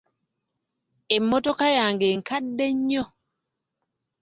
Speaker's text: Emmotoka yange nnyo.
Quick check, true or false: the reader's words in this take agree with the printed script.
false